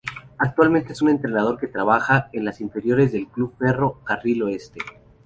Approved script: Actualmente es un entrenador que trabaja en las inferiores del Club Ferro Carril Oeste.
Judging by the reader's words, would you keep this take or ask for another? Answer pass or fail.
pass